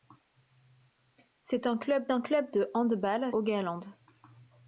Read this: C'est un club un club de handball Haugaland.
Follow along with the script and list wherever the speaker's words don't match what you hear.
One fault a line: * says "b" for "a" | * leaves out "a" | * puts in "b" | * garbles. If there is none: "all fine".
all fine